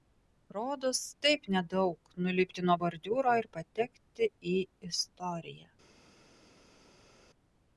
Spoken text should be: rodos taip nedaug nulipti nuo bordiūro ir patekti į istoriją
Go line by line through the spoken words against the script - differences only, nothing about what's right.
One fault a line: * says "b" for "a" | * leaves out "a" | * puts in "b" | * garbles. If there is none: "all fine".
all fine